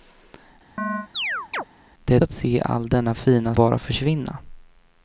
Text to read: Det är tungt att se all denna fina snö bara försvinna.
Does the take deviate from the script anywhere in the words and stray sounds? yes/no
yes